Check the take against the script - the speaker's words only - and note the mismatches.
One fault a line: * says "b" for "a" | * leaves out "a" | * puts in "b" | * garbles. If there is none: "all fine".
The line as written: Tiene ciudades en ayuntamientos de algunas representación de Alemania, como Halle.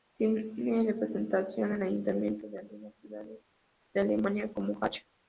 * says "representación" for "ciudades"
* says "ciudades" for "representación"